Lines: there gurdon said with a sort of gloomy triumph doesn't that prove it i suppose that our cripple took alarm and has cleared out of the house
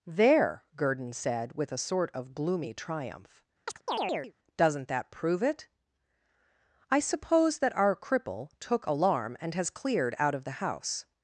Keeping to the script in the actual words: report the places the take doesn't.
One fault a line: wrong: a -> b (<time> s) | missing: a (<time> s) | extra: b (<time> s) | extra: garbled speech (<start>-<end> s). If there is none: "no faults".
no faults